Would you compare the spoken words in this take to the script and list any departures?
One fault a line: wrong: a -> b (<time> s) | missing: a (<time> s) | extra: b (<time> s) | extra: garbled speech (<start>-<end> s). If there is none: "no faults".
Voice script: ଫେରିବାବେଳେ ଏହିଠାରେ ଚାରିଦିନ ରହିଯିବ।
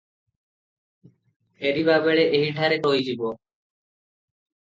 missing: ଚାରିଦିନ (2.8 s)